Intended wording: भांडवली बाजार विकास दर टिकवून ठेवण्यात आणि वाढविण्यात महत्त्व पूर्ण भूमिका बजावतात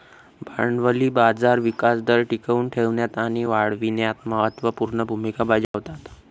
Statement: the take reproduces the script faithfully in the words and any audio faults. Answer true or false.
false